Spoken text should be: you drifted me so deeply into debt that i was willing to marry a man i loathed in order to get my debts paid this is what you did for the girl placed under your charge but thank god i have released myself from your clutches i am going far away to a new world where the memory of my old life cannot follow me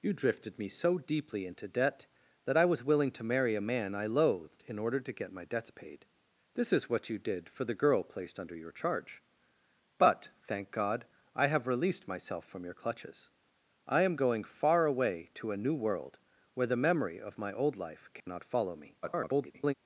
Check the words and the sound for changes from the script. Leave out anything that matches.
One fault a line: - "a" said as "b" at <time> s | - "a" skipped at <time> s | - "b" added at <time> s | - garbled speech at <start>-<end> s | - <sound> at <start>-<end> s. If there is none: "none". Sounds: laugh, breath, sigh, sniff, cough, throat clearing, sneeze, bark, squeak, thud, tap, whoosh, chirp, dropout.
- dropout at 18.2-18.3 s
- garbled speech at 19.0-19.7 s